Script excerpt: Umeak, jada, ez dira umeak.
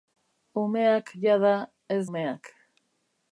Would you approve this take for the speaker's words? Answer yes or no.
no